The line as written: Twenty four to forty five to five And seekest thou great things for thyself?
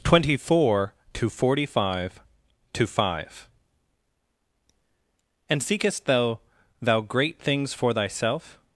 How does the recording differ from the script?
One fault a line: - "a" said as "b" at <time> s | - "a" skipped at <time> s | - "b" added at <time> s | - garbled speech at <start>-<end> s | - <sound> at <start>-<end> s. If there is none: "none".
- "thou" added at 6.8 s